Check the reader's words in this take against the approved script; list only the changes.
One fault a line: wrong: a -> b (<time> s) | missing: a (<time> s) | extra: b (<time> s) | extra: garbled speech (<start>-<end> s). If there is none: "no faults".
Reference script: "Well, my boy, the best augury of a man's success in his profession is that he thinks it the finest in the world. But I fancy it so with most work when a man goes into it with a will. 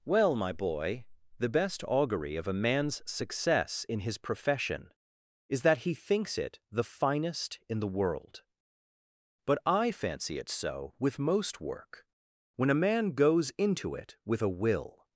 no faults